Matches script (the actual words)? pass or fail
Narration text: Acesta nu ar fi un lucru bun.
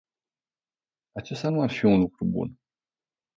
pass